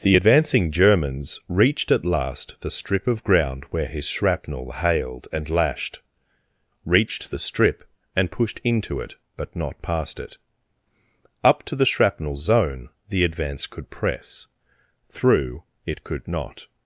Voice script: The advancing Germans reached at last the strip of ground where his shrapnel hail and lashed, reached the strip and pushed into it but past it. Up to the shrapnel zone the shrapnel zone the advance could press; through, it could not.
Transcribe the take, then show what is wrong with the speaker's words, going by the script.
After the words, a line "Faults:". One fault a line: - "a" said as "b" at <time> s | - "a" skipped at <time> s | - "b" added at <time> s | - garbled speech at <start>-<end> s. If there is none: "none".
The advancing Germans reached at last the strip of ground where his shrapnel hailed and lashed, reached the strip and pushed into it but not past it. Up to the shrapnel zone the advance could press; through, it could not.
Faults:
- "hail" said as "hailed" at 4.7 s
- "not" added at 9.5 s
- "shrapnel zone the" skipped at 13.2 s